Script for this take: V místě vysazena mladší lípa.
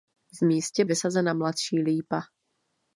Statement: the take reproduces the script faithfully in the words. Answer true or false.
true